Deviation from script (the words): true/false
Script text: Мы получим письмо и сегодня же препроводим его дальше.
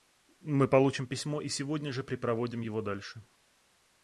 false